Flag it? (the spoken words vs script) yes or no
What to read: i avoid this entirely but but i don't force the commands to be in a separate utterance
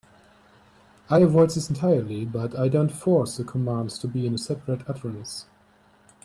yes